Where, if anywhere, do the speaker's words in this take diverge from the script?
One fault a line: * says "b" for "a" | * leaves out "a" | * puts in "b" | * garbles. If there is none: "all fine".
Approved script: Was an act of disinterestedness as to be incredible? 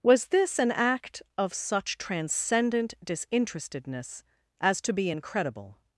* puts in "this"
* puts in "such transcendent"